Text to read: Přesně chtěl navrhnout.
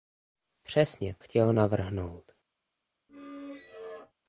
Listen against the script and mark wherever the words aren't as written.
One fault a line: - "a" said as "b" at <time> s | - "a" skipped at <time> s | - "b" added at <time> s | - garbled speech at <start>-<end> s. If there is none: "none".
none